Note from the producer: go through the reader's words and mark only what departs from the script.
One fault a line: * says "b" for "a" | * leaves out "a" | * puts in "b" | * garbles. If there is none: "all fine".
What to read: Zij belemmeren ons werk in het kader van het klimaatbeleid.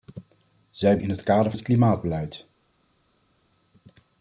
* leaves out "belemmeren ons werk"
* leaves out "van"